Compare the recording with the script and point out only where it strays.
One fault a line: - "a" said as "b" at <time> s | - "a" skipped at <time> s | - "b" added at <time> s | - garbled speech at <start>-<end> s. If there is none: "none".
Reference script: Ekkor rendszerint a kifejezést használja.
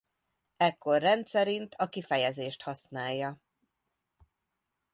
none